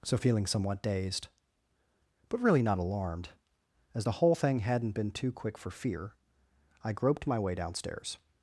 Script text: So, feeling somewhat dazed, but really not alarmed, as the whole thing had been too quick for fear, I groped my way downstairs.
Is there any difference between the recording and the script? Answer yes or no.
yes